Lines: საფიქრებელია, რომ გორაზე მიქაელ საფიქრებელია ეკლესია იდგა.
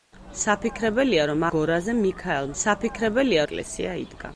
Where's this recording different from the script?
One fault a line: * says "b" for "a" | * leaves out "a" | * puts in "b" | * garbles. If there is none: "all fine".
all fine